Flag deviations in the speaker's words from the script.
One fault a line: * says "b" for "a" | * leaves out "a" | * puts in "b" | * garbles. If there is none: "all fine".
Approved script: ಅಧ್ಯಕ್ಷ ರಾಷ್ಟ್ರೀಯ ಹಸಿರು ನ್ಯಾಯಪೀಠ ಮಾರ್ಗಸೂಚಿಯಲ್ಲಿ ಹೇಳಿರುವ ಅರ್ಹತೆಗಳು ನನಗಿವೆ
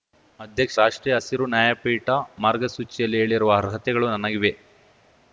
all fine